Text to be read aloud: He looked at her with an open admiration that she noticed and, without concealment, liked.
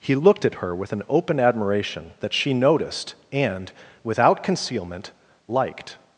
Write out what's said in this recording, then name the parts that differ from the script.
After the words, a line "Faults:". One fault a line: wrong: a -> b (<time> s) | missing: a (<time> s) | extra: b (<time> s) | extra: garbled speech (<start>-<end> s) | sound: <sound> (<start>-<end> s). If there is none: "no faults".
He looked at her with an open admiration that she noticed and, without concealment, liked.
Faults:
no faults